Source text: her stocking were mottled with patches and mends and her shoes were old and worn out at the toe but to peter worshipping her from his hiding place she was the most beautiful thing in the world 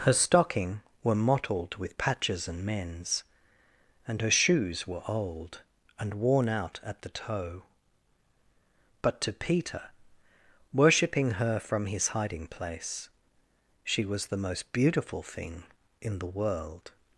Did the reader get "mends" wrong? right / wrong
right